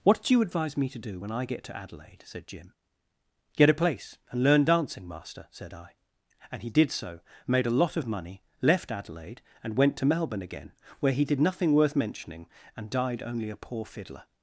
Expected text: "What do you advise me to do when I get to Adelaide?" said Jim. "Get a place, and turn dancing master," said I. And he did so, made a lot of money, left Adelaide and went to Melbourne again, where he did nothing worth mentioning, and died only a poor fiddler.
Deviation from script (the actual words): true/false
true